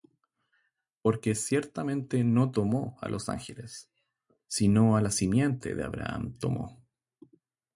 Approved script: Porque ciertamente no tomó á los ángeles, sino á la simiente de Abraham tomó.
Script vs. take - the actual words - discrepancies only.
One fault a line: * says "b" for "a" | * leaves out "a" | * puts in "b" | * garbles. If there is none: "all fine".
all fine